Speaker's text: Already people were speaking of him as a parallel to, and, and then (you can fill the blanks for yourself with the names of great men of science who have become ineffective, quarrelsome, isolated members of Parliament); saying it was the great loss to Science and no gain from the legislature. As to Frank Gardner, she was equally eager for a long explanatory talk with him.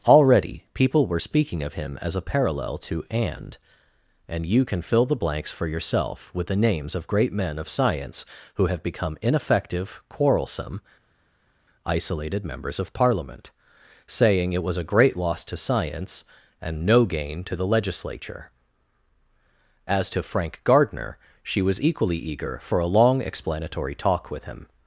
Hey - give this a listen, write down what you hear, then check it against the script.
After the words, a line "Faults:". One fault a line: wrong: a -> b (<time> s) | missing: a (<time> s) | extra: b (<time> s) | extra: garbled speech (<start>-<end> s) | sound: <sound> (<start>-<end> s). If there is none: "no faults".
Already people were speaking of him as a parallel to, and, and (you can fill the blanks for yourself with the names of great men of science who have become ineffective, quarrelsome, isolated members of Parliament); saying it was a great loss to Science and no gain to the legislature. As to Frank Gardner, she was equally eager for a long explanatory talk with him.
Faults:
missing: then (4.5 s)
wrong: the -> a (14.8 s)
wrong: from -> to (17.4 s)